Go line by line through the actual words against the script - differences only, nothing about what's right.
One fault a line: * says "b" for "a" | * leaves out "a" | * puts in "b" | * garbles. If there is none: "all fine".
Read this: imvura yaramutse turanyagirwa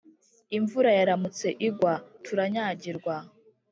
* puts in "igwa"